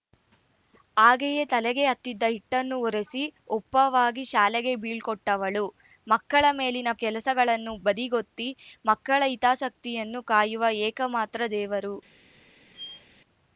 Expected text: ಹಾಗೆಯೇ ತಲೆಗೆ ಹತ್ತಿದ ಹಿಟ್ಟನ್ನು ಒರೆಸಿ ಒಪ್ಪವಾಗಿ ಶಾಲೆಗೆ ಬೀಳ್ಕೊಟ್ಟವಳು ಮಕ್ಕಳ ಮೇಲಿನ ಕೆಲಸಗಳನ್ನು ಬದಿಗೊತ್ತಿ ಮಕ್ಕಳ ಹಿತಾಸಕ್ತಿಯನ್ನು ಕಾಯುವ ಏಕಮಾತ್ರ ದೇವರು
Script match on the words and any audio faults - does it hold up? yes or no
no